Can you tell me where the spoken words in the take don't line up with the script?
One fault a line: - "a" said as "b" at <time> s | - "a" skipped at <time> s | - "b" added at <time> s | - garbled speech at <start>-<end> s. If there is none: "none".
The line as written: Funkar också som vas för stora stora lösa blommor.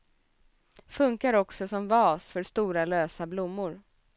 - "stora" skipped at 2.8 s